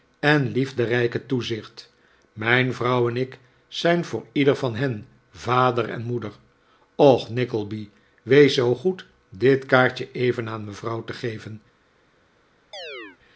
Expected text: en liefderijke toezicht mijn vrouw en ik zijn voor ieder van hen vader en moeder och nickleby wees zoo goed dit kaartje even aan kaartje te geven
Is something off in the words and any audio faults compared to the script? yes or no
yes